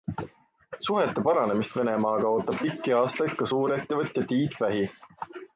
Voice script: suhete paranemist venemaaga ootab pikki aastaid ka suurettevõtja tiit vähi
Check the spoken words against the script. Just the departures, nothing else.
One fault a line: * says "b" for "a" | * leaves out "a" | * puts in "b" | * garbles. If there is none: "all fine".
all fine